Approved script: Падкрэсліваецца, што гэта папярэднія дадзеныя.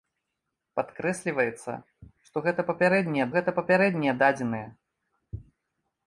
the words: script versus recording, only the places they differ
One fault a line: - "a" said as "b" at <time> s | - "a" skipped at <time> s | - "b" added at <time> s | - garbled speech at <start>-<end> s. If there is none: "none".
- "гэта папярэднія" added at 3.4 s